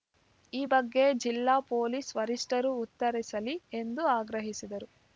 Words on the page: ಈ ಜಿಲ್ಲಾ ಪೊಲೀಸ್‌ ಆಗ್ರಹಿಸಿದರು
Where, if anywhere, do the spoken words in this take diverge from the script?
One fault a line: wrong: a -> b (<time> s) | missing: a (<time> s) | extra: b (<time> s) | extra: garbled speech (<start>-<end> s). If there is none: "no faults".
extra: ಬಗ್ಗೆ (0.6 s)
extra: ವರಿಷ್ಟರು ಉತ್ತರಿಸಲಿ ಎಂದು (2.2 s)